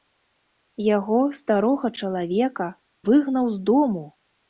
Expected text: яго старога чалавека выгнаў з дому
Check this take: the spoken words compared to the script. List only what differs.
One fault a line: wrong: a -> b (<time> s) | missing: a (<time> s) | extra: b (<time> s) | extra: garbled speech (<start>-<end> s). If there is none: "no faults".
no faults